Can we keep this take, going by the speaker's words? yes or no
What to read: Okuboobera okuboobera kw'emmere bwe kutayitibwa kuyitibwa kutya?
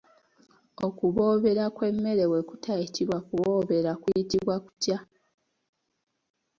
no